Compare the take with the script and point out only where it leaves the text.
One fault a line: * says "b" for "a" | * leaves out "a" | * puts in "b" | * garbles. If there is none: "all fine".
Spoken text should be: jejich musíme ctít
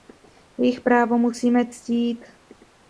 * puts in "právo"